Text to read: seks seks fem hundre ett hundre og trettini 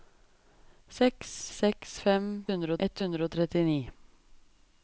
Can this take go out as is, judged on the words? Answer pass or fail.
pass